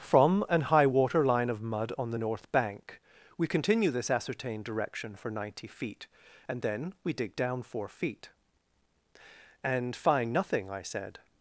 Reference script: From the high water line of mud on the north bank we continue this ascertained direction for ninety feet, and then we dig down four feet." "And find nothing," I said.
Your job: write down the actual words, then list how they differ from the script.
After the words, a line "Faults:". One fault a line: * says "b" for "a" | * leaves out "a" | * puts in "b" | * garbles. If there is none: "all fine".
From an high water line of mud on the north bank we continue this ascertained direction for ninety feet, and then we dig down four feet." "And find nothing," I said.
Faults:
* says "an" for "the"